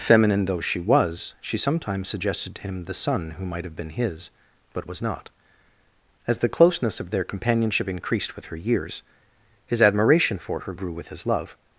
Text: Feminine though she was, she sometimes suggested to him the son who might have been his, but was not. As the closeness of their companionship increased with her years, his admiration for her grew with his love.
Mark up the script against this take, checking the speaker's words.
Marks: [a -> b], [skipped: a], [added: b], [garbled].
Feminine though she was, she sometimes suggested to him the son who might have been his, but was not. As the closeness of their companionship increased with her years, his admiration for her grew with his love.